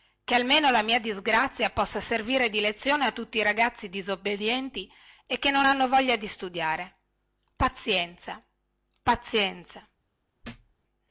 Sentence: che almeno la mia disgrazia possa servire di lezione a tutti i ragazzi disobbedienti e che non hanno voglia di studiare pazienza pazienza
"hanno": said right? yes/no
yes